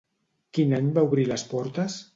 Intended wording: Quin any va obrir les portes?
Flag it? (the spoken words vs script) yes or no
no